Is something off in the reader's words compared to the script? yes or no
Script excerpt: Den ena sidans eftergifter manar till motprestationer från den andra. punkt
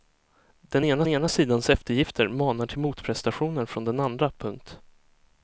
yes